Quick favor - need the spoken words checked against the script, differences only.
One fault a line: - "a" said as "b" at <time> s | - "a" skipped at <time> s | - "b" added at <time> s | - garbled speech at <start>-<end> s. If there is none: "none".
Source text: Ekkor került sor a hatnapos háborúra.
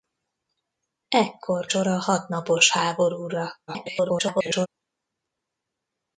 - "került" skipped at 1.7 s
- garbled speech at 3.7-4.7 s